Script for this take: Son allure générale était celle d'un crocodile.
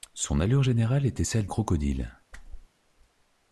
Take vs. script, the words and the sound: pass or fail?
fail